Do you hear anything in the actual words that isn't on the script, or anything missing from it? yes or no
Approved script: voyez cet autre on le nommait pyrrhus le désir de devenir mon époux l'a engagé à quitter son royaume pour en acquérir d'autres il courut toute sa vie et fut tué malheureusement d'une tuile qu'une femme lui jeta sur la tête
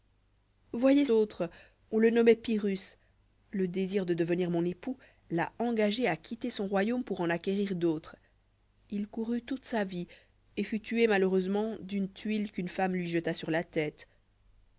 yes